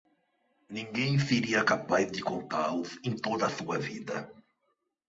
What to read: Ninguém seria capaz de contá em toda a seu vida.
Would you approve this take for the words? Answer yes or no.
no